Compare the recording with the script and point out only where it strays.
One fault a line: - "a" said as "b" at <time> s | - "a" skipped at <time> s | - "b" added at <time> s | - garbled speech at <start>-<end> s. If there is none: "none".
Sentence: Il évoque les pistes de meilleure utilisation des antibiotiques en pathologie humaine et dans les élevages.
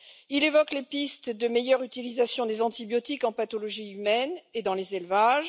none